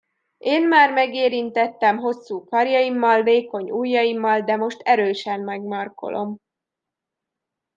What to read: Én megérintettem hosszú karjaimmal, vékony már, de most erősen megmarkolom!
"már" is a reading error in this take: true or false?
true